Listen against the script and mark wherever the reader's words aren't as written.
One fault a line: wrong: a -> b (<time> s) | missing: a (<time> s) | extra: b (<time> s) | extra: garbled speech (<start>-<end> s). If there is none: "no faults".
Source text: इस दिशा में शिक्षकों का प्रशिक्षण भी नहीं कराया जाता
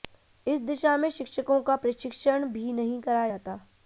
no faults